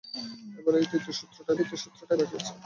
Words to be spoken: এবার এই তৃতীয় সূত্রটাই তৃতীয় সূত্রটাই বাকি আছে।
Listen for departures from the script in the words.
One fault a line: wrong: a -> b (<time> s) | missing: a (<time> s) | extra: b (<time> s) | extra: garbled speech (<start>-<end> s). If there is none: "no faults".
no faults